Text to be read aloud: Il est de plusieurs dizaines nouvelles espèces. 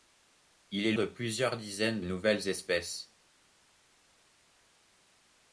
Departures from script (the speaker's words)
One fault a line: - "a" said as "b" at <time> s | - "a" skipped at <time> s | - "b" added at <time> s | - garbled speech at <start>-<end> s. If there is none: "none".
none